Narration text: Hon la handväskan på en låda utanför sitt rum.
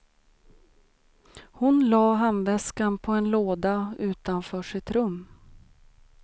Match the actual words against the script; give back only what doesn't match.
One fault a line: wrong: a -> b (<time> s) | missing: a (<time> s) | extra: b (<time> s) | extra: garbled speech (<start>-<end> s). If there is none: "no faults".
no faults